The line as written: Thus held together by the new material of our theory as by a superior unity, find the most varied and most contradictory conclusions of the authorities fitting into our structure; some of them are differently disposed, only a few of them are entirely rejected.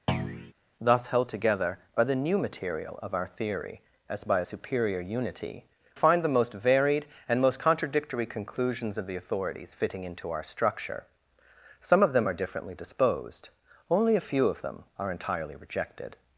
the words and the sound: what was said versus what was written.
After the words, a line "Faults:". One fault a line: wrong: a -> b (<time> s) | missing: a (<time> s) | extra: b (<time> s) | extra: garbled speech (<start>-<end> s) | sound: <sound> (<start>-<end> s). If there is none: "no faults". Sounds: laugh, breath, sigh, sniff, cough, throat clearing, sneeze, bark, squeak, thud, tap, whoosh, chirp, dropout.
Thus held together by the new material of our theory as by a superior unity, find the most varied and most contradictory conclusions of the authorities fitting into our structure; some of them are differently disposed, only a few of them are entirely rejected.
Faults:
sound: thud (0.1-0.5 s)